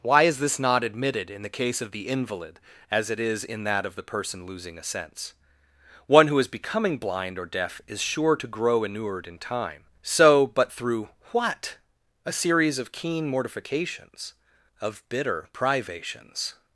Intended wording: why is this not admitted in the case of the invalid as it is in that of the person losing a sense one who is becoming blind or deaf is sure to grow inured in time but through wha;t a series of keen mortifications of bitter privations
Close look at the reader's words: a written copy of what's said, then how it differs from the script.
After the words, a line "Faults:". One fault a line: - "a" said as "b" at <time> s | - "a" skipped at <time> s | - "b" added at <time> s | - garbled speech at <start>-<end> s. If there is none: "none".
why is this not admitted in the case of the invalid as it is in that of the person losing a sense one who is becoming blind or deaf is sure to grow inured in time so but through wha;t a series of keen mortifications of bitter privations
Faults:
- "so" added at 10.0 s